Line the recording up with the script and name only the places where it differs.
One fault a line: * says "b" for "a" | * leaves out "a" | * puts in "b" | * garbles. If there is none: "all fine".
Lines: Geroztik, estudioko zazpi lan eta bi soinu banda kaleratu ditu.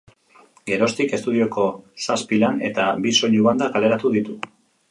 all fine